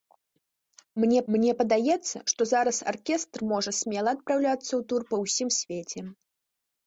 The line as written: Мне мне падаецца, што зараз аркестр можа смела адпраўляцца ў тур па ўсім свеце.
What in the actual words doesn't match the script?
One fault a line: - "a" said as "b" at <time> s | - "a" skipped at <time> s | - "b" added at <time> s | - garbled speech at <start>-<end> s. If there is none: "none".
none